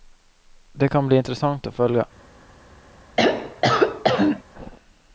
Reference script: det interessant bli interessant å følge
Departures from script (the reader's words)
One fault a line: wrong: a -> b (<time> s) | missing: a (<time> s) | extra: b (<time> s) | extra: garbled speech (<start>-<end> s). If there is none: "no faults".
wrong: interessant -> kan (0.9 s)